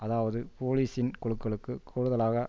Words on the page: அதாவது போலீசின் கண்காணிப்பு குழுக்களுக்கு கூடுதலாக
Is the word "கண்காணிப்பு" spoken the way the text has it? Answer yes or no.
no